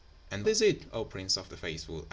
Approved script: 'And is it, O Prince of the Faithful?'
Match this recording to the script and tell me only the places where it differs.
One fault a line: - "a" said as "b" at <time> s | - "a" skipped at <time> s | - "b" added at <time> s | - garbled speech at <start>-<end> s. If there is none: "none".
none